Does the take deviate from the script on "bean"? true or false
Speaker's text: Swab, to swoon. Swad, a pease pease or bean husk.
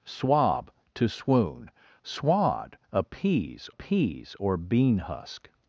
false